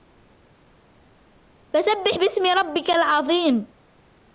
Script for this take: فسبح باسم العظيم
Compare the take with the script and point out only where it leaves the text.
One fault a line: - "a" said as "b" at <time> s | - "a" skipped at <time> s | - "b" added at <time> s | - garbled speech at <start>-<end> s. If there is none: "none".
- "ربك" added at 2.5 s